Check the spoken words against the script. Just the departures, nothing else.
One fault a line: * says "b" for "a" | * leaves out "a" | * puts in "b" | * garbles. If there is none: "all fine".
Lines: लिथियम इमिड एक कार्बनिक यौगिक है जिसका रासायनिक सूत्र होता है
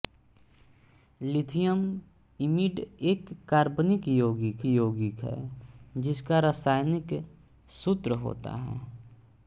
* puts in "यौगिक"